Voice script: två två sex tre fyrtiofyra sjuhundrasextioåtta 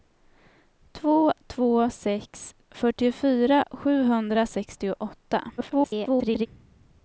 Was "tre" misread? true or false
true